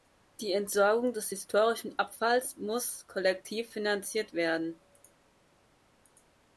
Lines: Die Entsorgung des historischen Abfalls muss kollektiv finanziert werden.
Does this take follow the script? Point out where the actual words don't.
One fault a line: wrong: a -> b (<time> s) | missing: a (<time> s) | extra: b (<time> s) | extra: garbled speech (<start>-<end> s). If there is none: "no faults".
no faults